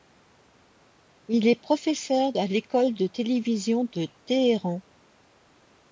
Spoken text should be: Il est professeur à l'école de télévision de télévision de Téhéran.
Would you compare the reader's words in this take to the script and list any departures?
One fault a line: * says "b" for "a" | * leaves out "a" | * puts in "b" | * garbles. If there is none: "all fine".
* leaves out "télévision de"